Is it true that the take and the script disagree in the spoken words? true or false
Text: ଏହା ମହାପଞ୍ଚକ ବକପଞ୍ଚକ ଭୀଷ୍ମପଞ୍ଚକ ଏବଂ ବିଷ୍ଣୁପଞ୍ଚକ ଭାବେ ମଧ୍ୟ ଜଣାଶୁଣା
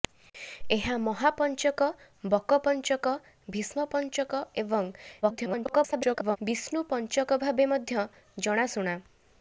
true